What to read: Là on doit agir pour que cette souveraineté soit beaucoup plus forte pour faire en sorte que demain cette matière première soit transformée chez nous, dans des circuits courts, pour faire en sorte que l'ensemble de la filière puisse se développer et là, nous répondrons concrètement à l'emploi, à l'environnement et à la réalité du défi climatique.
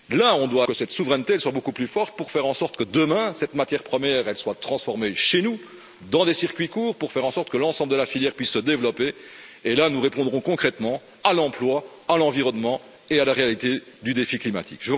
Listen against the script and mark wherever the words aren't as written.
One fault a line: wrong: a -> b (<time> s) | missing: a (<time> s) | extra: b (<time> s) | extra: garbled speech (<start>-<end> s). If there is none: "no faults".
missing: agir pour (0.7 s)